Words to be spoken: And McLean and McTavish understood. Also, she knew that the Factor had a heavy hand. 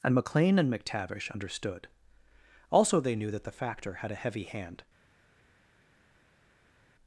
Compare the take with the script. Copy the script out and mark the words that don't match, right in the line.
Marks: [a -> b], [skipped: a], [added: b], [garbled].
And McLean and McTavish understood. Also, [she -> they] knew that the Factor had a heavy hand.